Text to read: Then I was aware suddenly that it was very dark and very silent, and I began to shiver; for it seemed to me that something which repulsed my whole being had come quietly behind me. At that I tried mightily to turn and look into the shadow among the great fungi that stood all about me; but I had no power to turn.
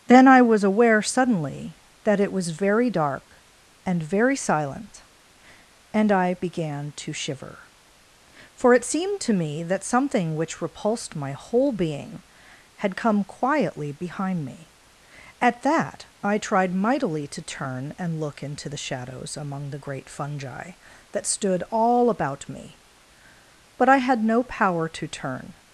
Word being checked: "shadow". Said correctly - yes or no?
no